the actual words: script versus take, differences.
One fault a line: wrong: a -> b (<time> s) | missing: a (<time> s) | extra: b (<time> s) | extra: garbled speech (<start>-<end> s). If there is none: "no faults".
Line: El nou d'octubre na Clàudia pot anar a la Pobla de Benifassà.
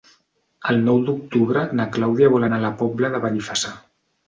wrong: pot -> vol (2.4 s)